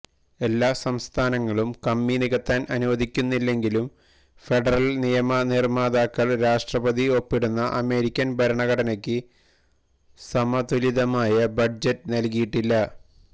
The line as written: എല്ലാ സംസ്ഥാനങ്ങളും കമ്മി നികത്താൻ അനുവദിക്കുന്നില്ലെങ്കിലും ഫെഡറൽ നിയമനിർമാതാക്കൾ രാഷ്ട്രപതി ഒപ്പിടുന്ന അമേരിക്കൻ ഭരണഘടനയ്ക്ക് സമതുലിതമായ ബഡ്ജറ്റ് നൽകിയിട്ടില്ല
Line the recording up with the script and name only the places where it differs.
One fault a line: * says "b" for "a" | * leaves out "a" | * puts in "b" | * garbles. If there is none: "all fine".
all fine